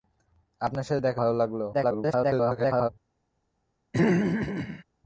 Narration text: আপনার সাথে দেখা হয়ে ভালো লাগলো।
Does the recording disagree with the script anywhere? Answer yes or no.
yes